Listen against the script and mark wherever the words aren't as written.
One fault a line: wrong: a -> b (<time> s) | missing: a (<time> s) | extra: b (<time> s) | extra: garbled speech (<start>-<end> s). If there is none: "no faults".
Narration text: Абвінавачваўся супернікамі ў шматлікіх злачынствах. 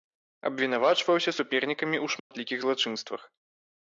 no faults